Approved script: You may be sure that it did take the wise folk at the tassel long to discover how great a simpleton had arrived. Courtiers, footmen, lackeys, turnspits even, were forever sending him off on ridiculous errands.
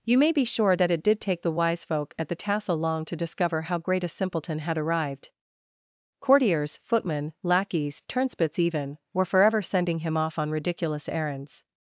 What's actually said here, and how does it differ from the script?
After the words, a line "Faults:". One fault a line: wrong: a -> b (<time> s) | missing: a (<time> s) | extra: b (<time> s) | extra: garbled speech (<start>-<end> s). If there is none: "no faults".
You may be sure that it did take the wise folk at the tassel long to discover how great a simpleton had arrived. Courtiers, footmen, lackeys, turnspits even, were forever sending him off on ridiculous errands.
Faults:
no faults